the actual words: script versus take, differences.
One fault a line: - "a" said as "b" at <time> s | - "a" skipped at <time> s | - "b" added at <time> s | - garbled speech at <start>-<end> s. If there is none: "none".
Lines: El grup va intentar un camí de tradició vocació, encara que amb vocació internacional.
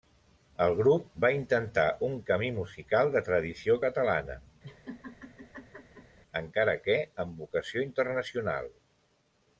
- "musical" added at 2.6 s
- "vocació" said as "catalana" at 3.8 s